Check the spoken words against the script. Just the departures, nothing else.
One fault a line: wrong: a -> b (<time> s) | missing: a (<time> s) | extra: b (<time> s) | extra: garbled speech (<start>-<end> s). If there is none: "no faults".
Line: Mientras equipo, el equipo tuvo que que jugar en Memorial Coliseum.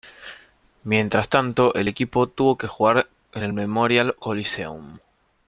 wrong: equipo -> tanto (1.3 s)
missing: que (2.7 s)
extra: el (3.4 s)